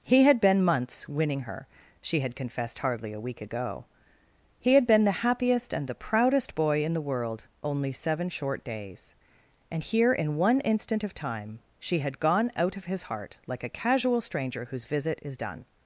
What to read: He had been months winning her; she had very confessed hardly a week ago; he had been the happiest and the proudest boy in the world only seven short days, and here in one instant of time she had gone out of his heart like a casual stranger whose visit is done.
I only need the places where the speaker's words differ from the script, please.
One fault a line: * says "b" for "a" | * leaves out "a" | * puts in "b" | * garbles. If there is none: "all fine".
* leaves out "very"